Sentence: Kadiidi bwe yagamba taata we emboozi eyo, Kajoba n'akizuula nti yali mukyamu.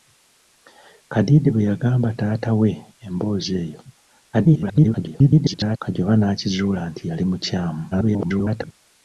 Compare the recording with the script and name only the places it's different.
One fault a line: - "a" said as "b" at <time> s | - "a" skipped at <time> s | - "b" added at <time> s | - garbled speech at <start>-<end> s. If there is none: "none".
- garbled speech at 4.3-5.8 s
- garbled speech at 7.9-8.7 s